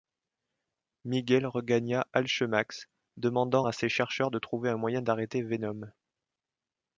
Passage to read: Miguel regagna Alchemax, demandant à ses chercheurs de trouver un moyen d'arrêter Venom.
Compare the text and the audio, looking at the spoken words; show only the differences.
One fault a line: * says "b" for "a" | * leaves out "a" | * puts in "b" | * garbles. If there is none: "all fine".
all fine